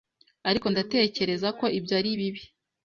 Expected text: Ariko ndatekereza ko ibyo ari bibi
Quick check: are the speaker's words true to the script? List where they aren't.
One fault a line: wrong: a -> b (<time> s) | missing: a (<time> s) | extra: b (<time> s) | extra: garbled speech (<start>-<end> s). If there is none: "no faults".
no faults